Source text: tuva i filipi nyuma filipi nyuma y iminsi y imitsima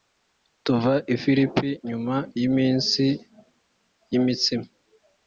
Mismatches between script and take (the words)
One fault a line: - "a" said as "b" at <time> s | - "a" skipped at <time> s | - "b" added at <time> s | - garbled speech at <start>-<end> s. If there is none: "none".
- "filipi nyuma" skipped at 2.2 s